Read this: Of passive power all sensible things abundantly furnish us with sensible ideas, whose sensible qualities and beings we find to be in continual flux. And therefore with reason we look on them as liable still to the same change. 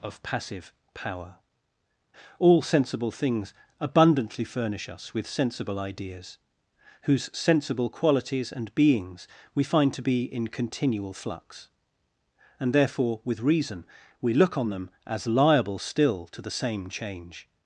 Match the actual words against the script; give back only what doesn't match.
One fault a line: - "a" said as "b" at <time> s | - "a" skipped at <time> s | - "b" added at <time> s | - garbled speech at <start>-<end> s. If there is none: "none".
none